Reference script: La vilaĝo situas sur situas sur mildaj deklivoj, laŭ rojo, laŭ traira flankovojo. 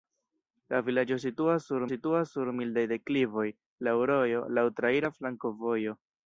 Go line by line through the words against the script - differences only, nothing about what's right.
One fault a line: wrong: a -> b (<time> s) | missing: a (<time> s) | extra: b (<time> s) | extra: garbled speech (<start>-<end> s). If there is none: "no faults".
no faults